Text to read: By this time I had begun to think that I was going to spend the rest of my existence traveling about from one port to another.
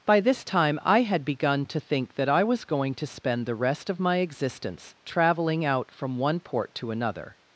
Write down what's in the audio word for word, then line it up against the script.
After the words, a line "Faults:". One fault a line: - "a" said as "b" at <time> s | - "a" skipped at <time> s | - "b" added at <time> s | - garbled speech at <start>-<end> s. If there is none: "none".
By this time I had begun to think that I was going to spend the rest of my existence traveling out from one port to another.
Faults:
- "about" said as "out" at 5.6 s